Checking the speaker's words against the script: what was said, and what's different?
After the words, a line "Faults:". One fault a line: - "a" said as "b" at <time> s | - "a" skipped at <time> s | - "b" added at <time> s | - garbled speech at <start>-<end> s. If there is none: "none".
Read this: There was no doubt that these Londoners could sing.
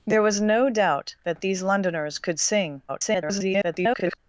There was no doubt that these Londoners could sing. [garbled]
Faults:
- garbled speech at 2.9-4.2 s